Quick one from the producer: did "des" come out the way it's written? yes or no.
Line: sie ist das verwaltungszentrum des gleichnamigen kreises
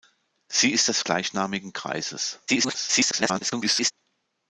no